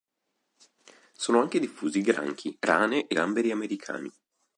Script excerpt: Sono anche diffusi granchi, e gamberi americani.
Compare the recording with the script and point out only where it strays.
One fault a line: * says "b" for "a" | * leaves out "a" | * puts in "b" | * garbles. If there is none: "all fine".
* puts in "rane"